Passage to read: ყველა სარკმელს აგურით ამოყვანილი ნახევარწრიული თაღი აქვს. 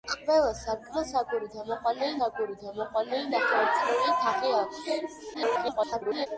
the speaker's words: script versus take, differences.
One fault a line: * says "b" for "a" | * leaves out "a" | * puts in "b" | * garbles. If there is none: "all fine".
* puts in "აგურით ამოყვანილი"
* garbles